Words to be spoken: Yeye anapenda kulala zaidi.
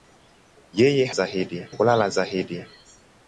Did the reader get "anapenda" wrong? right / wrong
wrong